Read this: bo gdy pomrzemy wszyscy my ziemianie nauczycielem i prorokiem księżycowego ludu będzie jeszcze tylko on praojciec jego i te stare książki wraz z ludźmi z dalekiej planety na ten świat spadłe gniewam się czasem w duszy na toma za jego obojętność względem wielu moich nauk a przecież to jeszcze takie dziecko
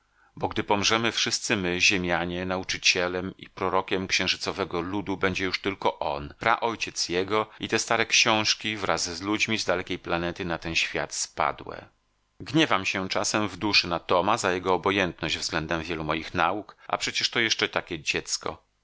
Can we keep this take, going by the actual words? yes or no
no